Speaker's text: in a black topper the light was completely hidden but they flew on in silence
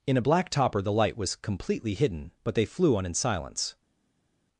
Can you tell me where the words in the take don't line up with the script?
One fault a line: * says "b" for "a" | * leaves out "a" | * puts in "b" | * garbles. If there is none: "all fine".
all fine